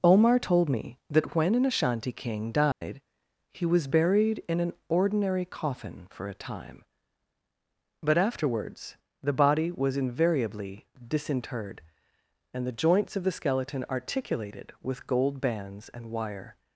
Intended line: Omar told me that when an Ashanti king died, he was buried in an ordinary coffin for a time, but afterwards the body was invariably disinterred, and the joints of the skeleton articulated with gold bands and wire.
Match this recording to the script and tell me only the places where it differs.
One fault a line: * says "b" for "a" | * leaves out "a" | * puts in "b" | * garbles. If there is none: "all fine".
all fine